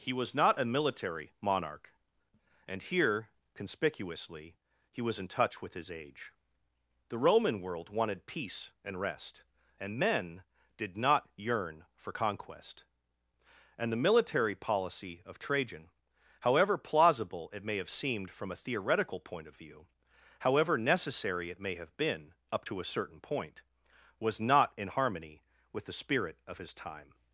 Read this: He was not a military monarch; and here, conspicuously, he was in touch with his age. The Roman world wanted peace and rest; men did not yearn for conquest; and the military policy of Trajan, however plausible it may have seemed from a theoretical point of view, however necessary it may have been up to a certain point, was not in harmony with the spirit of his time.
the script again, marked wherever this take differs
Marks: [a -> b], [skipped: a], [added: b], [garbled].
He was not a military monarch; and here, conspicuously, he was in touch with his age. The Roman world wanted peace and rest; [added: and] men did not yearn for conquest; and the military policy of Trajan, however plausible it may have seemed from a theoretical point of view, however necessary it may have been up to a certain point, was not in harmony with the spirit of his time.